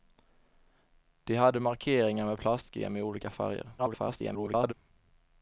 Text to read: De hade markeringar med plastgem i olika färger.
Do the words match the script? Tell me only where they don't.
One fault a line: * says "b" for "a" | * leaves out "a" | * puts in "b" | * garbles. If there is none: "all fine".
* garbles